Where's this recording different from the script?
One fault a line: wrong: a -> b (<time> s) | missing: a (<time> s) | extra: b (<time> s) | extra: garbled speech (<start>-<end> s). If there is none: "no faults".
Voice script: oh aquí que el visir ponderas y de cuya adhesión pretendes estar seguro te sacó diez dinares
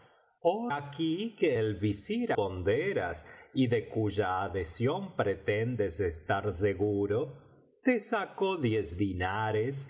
no faults